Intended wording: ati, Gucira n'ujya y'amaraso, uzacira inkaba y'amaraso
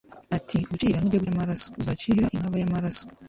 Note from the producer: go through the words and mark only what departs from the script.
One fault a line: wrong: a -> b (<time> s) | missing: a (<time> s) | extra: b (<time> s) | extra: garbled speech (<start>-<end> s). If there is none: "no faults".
no faults